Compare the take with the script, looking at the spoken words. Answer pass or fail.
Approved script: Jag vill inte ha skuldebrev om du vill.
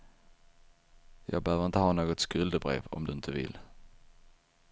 fail